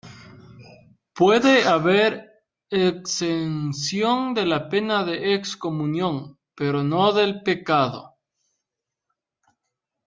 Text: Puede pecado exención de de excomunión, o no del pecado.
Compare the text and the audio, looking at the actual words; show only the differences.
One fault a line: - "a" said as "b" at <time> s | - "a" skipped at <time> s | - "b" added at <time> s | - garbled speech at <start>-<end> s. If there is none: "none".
- "pecado" said as "haber" at 1.7 s
- "la pena" added at 4.5 s
- "o" said as "pero" at 6.5 s